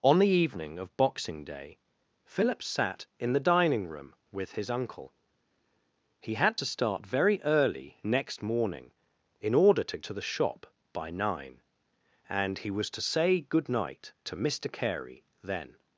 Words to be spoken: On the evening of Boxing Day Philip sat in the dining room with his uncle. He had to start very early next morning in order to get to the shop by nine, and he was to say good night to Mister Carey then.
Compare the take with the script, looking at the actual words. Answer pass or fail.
fail